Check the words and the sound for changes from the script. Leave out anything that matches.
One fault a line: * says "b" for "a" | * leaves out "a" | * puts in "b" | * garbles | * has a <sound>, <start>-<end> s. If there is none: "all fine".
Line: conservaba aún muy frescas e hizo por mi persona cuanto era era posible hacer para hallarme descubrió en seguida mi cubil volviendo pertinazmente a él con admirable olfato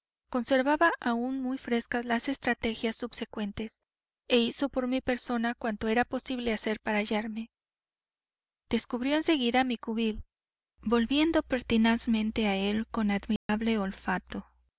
* puts in "las estrategias subsecuentes"
* leaves out "era"
* has a dropout, 13.4-13.5 s